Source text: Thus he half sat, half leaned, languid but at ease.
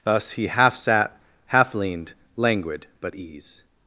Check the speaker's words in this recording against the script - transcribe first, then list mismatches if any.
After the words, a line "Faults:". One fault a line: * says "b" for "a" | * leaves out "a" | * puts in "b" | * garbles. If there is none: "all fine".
Thus he half sat, half leaned, languid but ease.
Faults:
* leaves out "at"